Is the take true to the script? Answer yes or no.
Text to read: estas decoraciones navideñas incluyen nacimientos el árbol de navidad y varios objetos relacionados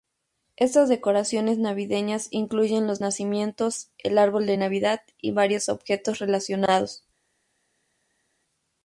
no